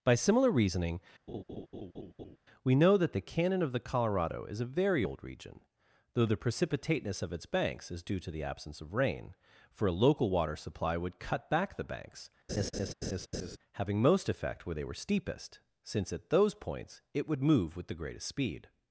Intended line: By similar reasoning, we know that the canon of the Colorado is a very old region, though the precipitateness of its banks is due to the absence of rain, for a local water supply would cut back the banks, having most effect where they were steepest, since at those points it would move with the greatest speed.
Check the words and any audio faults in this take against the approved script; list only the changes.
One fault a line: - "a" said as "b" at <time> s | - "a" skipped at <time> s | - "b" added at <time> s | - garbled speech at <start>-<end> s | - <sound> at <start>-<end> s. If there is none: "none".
- laugh at 1.3-2.4 s
- laugh at 12.5-13.6 s